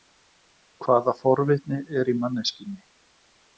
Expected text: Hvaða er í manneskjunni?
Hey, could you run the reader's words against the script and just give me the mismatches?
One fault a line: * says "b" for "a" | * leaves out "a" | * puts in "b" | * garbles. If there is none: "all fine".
* puts in "forvitni"